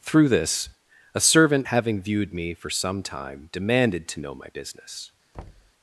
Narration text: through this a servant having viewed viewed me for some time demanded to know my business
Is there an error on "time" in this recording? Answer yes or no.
no